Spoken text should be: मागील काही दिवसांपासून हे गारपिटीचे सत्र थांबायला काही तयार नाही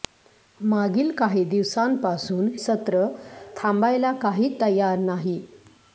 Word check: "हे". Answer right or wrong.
wrong